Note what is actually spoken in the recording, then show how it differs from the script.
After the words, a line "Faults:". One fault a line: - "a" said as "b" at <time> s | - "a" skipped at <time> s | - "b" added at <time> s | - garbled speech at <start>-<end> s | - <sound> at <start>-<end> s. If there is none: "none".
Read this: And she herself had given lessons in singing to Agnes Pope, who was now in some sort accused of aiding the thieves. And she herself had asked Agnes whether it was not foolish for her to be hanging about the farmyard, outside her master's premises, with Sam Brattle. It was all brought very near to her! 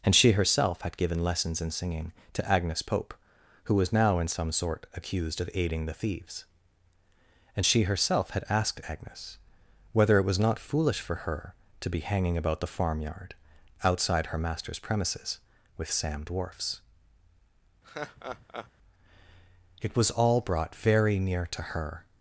And she herself had given lessons in singing to Agnes Pope, who was now in some sort accused of aiding the thieves. And she herself had asked Agnes whether it was not foolish for her to be hanging about the farmyard, outside her master's premises, with Sam Dwarfs. It was all brought very near to her!
Faults:
- "Brattle" said as "Dwarfs" at 16.2 s
- laugh at 17.8-18.7 s